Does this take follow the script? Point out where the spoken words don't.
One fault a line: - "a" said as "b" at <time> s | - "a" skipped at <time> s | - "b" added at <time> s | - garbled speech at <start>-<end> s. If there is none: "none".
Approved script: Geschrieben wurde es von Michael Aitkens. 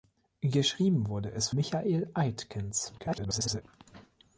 - "von" skipped at 1.5 s
- garbled speech at 3.0-3.6 s